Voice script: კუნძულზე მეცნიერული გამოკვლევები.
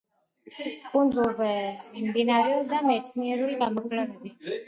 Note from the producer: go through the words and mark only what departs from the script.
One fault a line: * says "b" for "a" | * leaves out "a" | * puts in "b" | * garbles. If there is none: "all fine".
* puts in "მიმდინარეობდა"